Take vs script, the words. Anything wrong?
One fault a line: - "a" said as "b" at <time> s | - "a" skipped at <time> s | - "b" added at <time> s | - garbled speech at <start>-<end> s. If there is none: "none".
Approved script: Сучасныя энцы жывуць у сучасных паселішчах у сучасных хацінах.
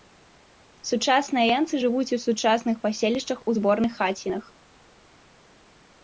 - "сучасных" said as "зборных" at 3.5 s